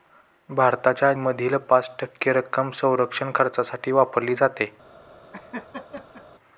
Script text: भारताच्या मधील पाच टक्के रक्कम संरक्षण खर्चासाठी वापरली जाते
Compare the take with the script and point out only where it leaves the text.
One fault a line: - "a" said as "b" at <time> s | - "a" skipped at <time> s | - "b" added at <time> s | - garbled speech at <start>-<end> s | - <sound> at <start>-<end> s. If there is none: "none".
- laugh at 5.3-6.2 s